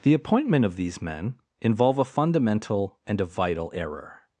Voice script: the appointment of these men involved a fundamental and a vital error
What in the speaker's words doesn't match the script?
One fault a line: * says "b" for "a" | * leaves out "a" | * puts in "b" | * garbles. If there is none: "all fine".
* says "involve" for "involved"